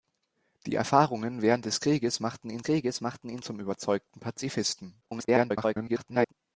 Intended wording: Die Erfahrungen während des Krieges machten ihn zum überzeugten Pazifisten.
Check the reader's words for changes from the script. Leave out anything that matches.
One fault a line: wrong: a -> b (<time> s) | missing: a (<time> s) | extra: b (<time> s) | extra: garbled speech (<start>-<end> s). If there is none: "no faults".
extra: Krieges machten ihn (2.6 s)
extra: garbled speech (5.0-6.3 s)